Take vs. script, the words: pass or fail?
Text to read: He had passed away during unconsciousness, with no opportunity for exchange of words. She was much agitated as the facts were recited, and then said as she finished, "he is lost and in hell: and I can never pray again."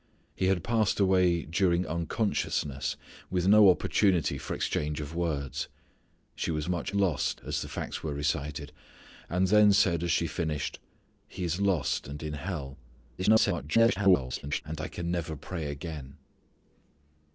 fail